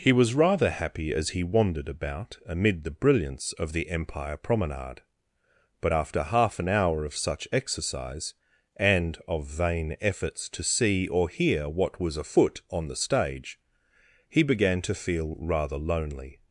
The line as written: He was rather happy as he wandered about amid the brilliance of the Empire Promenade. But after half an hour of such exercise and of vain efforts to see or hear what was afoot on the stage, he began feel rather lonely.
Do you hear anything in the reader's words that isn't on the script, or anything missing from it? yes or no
yes